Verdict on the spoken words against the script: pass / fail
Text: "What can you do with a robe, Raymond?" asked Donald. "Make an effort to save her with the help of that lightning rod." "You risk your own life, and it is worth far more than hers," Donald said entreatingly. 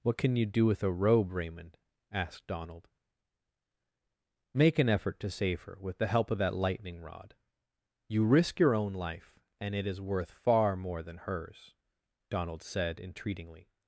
pass